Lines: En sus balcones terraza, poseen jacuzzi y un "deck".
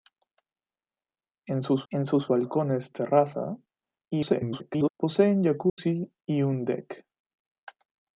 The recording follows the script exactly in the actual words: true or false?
false